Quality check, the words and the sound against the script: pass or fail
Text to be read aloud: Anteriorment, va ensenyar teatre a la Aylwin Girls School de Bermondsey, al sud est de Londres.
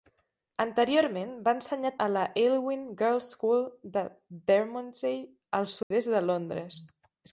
fail